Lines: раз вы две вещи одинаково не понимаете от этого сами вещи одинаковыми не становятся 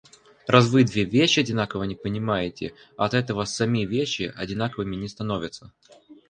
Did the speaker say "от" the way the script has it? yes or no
yes